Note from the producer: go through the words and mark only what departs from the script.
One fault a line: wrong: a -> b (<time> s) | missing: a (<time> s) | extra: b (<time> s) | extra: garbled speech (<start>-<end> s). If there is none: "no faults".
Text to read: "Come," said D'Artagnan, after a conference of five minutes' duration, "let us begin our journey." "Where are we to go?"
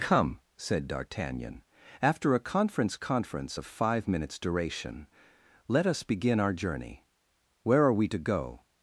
extra: conference (3.0 s)